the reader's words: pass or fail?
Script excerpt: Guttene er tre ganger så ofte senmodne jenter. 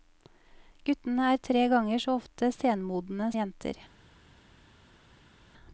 pass